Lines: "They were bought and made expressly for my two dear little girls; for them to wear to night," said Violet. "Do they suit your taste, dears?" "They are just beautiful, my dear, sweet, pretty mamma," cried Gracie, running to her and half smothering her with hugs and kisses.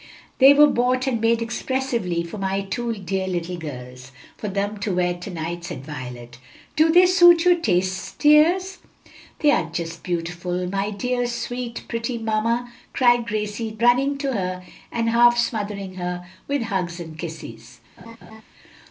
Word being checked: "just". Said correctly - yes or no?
yes